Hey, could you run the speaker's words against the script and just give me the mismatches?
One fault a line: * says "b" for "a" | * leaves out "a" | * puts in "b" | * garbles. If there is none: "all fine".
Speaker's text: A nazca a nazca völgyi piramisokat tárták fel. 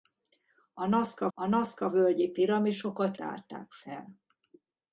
all fine